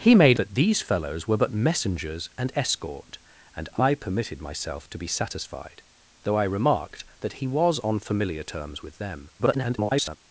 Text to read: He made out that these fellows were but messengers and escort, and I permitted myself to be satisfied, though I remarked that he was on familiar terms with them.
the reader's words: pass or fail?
fail